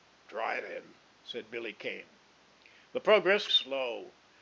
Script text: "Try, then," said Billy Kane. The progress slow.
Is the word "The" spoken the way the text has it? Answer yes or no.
yes